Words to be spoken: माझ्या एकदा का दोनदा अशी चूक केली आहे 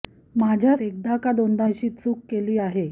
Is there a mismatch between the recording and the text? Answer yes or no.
no